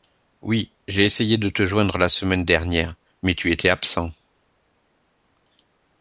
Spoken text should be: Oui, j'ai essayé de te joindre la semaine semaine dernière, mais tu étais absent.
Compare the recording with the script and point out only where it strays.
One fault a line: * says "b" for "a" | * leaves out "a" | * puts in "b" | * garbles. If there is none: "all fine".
* leaves out "semaine"